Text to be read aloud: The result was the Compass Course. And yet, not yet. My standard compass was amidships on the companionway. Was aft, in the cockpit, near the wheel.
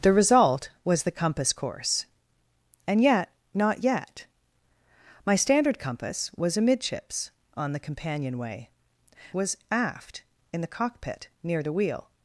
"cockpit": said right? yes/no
yes